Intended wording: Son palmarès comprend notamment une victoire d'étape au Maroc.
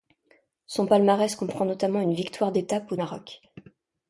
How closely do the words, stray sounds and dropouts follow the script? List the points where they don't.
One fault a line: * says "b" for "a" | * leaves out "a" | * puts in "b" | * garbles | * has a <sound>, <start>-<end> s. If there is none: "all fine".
all fine